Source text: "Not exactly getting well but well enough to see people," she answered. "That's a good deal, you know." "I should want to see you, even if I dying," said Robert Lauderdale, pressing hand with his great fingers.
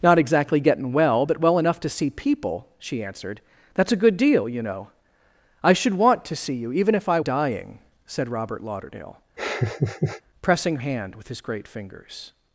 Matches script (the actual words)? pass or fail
pass